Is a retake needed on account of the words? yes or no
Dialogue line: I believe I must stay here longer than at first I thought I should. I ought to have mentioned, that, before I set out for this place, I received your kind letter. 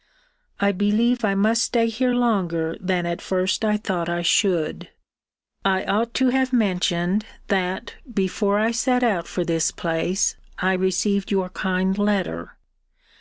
no